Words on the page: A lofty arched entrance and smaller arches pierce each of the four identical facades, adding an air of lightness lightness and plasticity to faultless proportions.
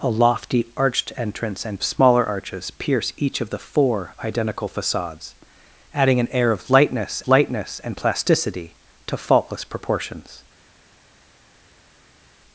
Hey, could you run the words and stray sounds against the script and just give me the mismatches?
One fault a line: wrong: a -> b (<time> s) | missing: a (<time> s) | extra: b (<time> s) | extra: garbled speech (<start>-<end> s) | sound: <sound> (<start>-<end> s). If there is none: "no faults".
no faults